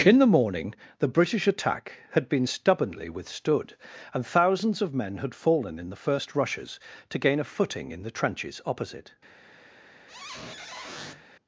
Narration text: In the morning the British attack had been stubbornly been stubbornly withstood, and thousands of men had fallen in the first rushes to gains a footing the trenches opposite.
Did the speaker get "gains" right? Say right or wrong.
wrong